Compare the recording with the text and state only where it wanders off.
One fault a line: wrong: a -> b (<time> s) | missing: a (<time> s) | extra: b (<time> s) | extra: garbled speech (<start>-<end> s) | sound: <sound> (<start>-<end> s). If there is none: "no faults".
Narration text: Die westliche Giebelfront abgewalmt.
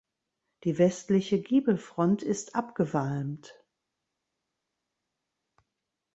extra: ist (2.2 s)